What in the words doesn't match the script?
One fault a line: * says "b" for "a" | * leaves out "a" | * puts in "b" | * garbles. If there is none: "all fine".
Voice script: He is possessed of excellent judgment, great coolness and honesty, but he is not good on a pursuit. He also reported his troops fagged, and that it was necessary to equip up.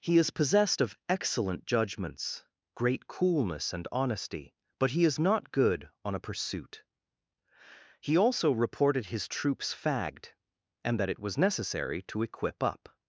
* says "judgments" for "judgment"